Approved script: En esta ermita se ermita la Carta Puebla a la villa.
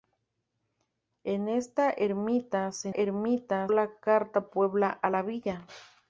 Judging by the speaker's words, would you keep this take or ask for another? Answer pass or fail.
pass